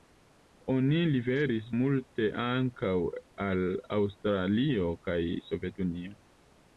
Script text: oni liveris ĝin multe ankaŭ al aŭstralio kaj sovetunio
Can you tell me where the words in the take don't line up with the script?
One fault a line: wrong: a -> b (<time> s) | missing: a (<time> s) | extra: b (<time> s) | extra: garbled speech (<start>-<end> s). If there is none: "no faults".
missing: ĝin (1.7 s)